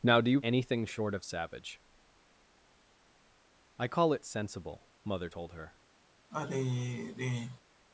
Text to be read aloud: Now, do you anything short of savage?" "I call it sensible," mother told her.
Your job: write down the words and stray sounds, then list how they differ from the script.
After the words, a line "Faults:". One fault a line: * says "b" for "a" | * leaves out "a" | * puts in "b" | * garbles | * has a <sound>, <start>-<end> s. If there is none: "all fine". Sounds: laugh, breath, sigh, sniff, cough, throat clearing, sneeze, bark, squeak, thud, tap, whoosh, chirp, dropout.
Now, do you anything short of savage?" "I call it sensible," mother told her.
Faults:
* has a sigh, 6.3-7.6 s